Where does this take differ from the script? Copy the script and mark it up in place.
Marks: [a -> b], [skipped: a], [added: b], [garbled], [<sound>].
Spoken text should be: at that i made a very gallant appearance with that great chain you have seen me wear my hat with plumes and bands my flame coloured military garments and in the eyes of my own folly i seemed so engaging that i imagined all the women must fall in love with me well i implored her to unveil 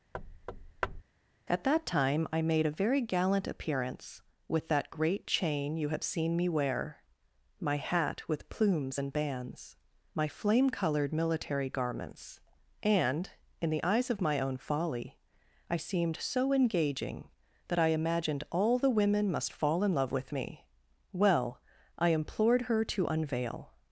[thud] at that [added: time] i made a very gallant appearance with that great chain you have seen me wear my hat with plumes and bands my flame coloured military garments and in the eyes of my own folly i seemed so engaging that i imagined all the women must fall in love with me well i implored her to unveil